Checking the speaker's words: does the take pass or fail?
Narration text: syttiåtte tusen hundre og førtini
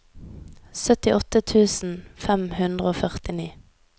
fail